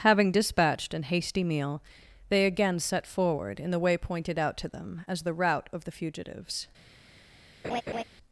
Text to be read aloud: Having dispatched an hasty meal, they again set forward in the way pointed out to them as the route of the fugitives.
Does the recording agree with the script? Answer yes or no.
yes